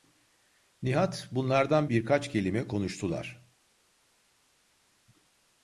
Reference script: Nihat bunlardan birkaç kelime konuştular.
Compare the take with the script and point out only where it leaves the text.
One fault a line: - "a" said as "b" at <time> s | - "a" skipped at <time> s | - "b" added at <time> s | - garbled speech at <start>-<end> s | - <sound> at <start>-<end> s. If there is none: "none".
none